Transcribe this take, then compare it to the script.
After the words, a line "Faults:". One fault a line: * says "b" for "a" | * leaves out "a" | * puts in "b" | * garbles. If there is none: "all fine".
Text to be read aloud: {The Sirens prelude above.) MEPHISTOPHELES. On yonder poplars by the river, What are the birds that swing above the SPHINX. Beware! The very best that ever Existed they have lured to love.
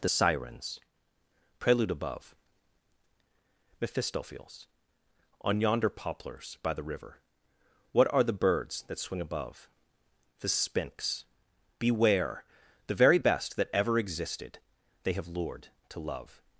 {The Sirens prelude above.) MEPHISTOPHELES. On yonder poplars by the river, What are the birds that swing above the SPHINX. Beware! The very best that ever Existed they have lured to love.
Faults:
all fine